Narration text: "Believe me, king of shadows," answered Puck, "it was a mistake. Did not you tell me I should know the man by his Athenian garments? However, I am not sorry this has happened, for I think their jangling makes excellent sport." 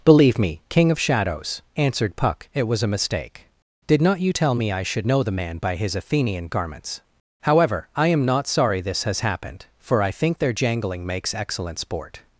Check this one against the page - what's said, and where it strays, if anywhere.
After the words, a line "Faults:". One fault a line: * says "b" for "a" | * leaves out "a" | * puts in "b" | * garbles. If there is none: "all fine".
"Believe me, king of shadows," answered Puck, "it was a mistake. Did not you tell me I should know the man by his Athenian garments? However, I am not sorry this has happened, for I think their jangling makes excellent sport."
Faults:
all fine